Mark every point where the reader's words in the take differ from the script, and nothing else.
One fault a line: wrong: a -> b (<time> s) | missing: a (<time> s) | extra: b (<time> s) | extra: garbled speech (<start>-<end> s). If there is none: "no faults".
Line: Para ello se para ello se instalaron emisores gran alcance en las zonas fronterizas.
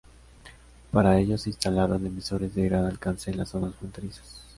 missing: para ello se (1.5 s)
extra: de (2.5 s)